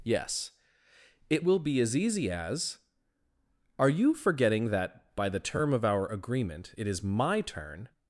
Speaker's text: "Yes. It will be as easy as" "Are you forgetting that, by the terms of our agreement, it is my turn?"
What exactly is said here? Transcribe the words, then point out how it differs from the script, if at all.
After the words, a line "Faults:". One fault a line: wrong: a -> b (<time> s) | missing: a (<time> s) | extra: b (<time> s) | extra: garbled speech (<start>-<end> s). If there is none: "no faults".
"Yes. It will be as easy as" "Are you forgetting that, by the term of our agreement, it is my turn?"
Faults:
wrong: terms -> term (5.4 s)